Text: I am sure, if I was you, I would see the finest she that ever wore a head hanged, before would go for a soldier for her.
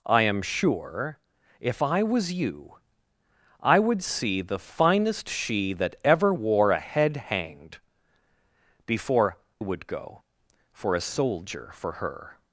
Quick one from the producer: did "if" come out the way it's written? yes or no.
yes